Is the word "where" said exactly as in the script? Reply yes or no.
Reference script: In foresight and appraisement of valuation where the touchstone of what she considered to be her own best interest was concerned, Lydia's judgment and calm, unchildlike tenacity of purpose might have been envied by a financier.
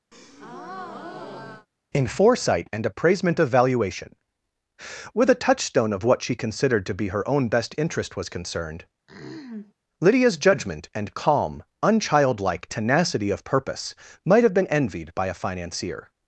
no